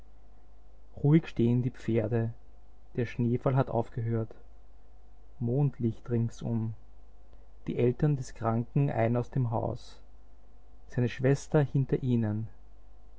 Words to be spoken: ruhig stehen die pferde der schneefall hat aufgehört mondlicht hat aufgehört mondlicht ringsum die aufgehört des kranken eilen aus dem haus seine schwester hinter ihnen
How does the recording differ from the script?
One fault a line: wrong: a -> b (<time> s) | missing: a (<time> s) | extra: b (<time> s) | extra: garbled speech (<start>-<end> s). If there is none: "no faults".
missing: hat aufgehört mondlicht (6.1 s)
wrong: aufgehört -> eltern (7.8 s)